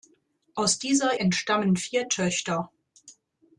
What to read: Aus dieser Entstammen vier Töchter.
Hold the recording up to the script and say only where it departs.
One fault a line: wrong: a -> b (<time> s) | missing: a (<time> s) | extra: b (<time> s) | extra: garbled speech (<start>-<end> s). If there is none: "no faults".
no faults